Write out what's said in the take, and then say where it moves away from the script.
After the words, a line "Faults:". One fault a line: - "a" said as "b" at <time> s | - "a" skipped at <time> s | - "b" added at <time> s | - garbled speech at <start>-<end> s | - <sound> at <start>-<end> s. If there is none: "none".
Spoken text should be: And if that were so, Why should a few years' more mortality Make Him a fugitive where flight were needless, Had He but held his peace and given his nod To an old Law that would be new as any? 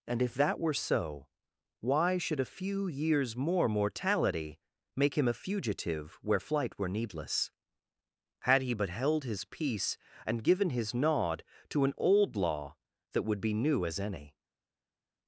And if that were so, Why should a few years' more mortality Make Him a fugitive where flight were needless, Had He but held his peace and given his nod To an old Law that would be new as any?
Faults:
none